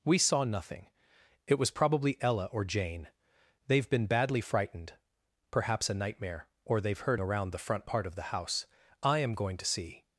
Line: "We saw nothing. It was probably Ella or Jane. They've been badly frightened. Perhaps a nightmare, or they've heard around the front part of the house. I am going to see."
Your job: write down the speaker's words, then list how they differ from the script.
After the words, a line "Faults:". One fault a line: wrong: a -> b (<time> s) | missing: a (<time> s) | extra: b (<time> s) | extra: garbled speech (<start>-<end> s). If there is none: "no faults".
"We saw nothing. It was probably Ella or Jane. They've been badly frightened. Perhaps a nightmare, or they've heard around the front part of the house. I am going to see."
Faults:
no faults